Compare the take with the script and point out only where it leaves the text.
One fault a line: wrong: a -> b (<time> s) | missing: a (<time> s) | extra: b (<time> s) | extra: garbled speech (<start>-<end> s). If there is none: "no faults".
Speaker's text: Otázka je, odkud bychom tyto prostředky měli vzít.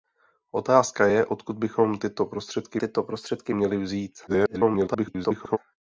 extra: tyto prostředky (2.8 s)
extra: garbled speech (4.3-5.6 s)